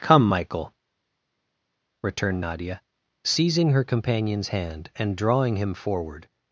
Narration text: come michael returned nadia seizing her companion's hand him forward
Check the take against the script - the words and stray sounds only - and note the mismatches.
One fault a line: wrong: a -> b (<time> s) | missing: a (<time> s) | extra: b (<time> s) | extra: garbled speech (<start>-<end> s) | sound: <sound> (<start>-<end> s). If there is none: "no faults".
extra: and drawing (5.0 s)